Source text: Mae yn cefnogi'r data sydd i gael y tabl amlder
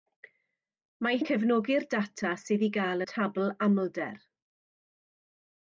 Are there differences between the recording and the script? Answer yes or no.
no